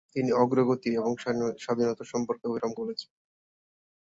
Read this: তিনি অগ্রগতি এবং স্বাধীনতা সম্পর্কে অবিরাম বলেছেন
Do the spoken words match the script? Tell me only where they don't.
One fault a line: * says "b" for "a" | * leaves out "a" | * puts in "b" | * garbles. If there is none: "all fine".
all fine